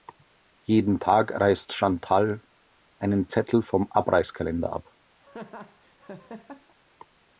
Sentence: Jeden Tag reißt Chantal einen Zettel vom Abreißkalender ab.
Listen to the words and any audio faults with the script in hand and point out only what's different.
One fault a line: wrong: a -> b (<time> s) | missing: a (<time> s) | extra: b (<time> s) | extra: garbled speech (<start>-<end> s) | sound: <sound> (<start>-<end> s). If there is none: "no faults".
sound: laugh (5.2-6.7 s)